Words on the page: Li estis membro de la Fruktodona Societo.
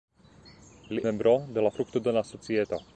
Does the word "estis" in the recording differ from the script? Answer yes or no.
yes